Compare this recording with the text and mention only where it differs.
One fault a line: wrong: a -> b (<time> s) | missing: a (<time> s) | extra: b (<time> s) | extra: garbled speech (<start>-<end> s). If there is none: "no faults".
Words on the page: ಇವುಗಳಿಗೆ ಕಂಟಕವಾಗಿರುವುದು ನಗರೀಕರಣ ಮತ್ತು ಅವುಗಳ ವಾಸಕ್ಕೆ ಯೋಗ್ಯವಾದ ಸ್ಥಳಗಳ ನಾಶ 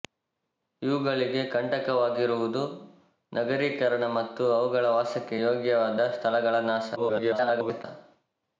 extra: garbled speech (7.0-7.8 s)